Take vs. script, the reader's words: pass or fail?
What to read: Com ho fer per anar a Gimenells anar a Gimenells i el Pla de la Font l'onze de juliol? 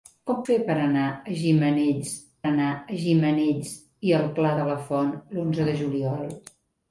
pass